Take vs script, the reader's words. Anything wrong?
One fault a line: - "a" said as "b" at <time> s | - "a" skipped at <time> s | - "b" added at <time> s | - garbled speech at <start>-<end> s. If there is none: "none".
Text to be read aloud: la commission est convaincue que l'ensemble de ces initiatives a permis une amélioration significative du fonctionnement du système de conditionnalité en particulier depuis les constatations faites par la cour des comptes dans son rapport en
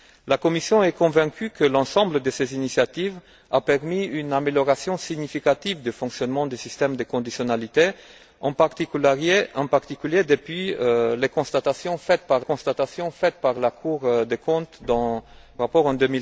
- "constatations faites par" added at 12.4 s
- "son" skipped at 15.2 s